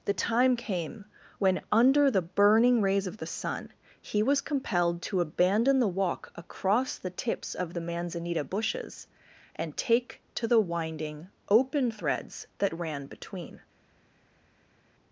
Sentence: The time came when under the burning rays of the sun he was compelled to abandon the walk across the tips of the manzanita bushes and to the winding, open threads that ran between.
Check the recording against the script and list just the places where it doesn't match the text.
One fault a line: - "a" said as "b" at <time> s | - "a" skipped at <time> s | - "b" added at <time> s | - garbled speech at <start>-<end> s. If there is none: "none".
- "take" added at 9.8 s